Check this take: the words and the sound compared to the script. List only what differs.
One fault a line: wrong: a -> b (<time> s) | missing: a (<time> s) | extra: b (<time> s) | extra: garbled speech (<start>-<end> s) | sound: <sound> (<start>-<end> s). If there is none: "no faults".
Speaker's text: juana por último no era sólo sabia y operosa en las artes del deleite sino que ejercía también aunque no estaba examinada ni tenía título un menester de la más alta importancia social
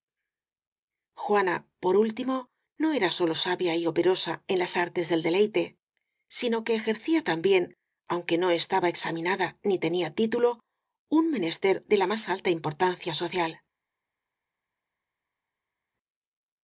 no faults